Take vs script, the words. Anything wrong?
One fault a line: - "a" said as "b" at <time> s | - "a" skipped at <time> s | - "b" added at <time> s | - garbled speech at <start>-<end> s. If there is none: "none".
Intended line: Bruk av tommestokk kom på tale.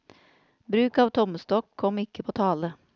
- "ikke" added at 2.0 s